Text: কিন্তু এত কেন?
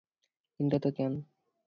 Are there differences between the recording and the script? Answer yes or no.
no